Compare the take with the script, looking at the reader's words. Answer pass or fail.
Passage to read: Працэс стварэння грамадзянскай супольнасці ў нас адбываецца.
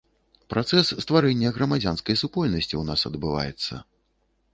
pass